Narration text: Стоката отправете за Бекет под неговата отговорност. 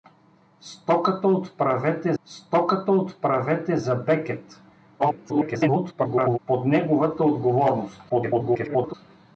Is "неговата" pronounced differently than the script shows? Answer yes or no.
no